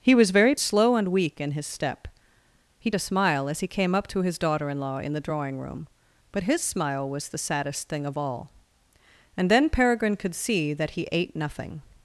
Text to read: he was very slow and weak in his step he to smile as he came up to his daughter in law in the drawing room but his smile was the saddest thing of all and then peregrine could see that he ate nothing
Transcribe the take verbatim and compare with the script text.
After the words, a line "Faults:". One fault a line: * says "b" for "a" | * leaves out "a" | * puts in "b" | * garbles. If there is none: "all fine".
he was very slow and weak in his step he to smile as he came up to his daughter in law in the drawing room but his smile was the saddest thing of all and then peregrine could see that he ate nothing
Faults:
all fine